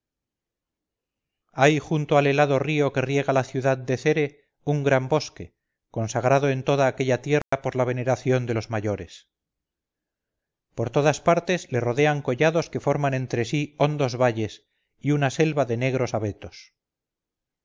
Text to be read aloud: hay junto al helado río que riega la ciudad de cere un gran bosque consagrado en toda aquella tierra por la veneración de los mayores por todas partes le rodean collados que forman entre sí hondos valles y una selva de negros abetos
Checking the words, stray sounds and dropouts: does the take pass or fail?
fail